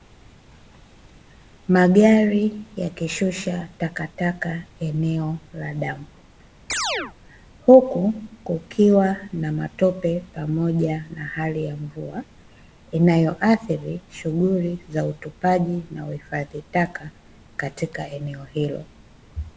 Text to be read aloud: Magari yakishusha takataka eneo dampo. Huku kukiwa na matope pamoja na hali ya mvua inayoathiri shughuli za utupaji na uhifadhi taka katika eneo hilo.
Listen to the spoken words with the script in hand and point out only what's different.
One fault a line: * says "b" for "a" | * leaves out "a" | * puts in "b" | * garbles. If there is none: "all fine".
* puts in "la"